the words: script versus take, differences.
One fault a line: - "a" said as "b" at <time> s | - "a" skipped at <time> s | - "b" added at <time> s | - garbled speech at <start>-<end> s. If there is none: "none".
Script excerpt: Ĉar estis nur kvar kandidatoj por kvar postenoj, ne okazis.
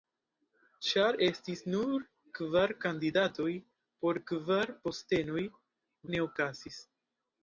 none